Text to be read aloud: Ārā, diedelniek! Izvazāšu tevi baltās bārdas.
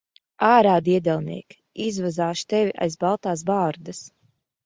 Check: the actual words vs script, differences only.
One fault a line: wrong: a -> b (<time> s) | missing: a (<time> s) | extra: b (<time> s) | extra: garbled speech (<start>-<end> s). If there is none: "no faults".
extra: aiz (2.9 s)